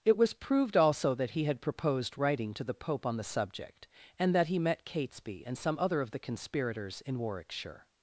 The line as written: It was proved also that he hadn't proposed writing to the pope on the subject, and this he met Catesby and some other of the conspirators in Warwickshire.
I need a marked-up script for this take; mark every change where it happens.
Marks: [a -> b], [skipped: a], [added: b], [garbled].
It was proved also that he [hadn't -> had] proposed writing to the pope on the subject, and [this -> that] he met Catesby and some other of the conspirators in Warwickshire.